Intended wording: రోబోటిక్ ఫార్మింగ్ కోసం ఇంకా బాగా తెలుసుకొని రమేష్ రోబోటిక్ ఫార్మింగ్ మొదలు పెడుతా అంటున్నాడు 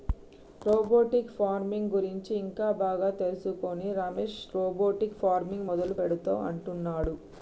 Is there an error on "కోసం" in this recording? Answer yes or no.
yes